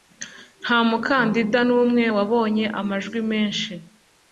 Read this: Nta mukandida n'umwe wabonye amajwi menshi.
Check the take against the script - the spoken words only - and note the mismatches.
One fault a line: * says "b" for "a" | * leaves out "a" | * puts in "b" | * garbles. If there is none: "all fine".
all fine